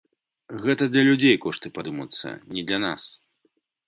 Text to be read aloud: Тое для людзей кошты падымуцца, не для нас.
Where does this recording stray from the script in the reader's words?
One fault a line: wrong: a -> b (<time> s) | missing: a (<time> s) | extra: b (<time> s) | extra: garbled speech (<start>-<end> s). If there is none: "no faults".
wrong: Тое -> Гэта (0.6 s)